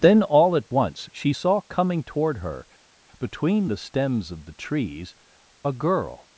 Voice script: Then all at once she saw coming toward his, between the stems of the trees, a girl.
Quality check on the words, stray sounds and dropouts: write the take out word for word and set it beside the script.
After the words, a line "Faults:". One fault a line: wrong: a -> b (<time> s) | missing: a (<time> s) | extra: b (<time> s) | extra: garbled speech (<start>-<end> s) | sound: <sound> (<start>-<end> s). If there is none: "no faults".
Then all at once she saw coming toward her, between the stems of the trees, a girl.
Faults:
wrong: his -> her (2.4 s)